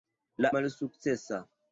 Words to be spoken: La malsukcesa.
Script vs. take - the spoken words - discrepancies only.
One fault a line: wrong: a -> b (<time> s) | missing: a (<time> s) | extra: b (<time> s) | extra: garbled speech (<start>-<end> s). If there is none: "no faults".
no faults